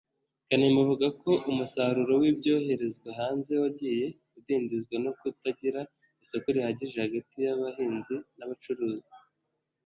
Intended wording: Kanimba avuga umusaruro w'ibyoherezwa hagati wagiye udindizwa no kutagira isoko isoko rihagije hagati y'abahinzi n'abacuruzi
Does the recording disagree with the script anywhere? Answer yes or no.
yes